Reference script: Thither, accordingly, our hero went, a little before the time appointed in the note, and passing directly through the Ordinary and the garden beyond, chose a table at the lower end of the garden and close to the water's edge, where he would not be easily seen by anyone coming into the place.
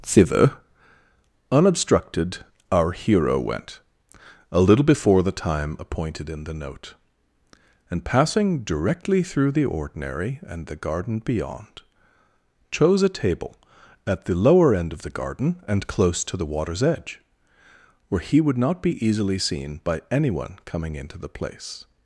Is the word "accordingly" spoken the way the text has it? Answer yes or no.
no